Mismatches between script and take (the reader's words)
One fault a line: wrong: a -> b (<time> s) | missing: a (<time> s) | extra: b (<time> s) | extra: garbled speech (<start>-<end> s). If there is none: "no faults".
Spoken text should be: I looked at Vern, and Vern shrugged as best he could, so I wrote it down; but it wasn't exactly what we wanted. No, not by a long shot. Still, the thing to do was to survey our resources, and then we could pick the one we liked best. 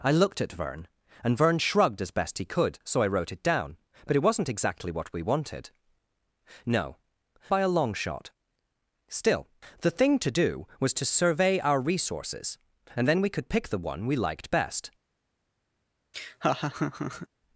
missing: not (7.0 s)